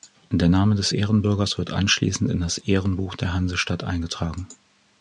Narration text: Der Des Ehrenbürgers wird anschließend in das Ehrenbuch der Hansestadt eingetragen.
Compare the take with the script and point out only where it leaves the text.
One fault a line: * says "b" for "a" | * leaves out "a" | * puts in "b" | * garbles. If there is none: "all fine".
* puts in "Name"